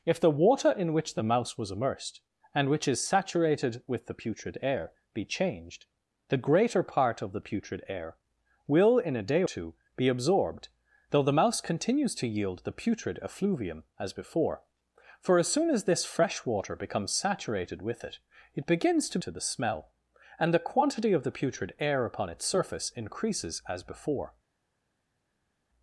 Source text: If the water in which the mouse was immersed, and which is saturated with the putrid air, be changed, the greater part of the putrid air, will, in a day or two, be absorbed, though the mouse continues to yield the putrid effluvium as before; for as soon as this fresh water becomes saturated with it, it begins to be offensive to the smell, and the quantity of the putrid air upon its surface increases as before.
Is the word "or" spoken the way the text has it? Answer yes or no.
no